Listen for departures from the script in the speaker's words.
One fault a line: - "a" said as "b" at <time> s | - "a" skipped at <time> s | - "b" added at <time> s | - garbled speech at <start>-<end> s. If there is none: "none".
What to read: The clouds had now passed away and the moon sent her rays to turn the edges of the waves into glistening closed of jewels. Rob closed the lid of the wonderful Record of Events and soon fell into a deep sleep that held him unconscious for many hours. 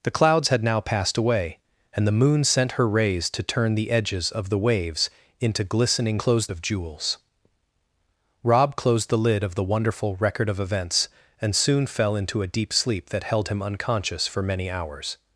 none